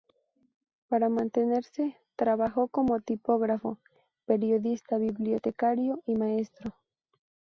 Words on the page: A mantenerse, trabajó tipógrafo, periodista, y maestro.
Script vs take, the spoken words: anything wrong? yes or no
yes